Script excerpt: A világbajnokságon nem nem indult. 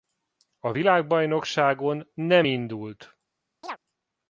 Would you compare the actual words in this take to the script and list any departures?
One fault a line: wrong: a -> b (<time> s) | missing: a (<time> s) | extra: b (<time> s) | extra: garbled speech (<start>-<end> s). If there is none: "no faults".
missing: nem (2.5 s)